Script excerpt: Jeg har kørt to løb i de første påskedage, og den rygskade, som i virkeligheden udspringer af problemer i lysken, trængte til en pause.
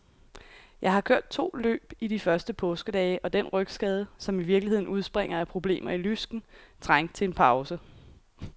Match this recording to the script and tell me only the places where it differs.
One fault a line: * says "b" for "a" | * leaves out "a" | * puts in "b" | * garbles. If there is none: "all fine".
all fine